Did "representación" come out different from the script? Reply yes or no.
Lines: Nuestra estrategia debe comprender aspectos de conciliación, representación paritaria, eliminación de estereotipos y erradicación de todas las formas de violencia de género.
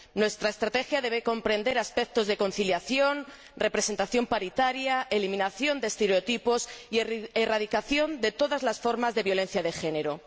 no